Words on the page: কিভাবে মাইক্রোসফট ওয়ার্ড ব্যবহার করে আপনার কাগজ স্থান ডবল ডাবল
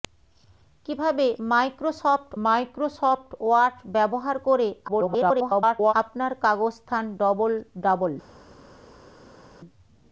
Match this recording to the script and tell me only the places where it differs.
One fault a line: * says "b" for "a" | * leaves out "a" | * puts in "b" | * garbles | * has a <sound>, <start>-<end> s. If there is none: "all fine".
* puts in "মাইক্রোসফট"
* garbles